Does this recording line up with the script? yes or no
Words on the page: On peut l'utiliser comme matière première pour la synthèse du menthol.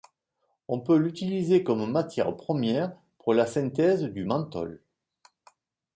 yes